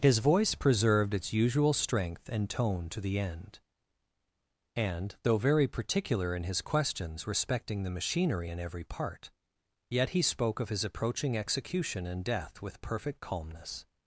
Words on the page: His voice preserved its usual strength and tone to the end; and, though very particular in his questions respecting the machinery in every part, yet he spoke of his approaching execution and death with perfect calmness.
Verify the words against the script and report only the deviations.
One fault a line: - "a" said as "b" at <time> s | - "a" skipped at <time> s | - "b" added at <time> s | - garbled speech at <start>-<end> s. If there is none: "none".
none